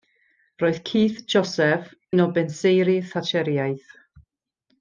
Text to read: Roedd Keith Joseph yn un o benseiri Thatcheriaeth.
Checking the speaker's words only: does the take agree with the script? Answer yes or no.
no